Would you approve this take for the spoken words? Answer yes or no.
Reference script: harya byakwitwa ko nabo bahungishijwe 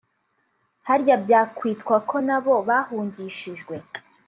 yes